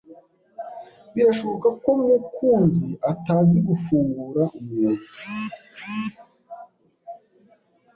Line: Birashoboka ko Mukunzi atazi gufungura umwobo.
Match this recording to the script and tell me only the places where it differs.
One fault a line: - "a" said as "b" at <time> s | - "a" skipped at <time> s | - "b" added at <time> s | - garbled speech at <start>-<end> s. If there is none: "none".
none